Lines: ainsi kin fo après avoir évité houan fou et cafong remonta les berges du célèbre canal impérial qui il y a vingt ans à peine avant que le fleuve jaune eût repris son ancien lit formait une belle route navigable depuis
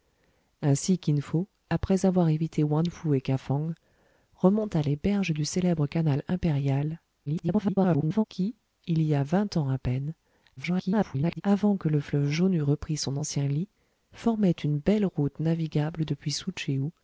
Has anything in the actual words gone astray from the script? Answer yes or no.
yes